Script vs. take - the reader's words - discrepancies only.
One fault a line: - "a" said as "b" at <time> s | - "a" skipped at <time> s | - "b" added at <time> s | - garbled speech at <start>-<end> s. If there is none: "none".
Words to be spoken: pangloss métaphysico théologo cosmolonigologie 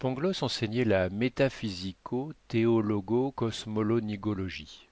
- "enseignait la" added at 0.4 s